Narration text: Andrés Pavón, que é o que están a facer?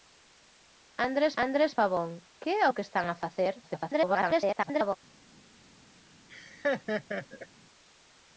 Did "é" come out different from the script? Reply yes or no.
no